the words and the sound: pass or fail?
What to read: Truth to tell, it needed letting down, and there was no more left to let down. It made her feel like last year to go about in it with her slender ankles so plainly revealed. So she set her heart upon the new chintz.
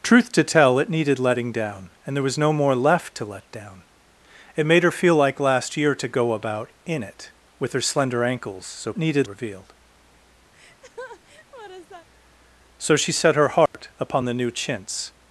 fail